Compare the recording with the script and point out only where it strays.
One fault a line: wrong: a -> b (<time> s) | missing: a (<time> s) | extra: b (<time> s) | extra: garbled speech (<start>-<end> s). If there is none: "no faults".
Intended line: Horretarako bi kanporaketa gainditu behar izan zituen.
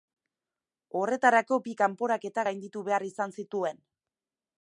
no faults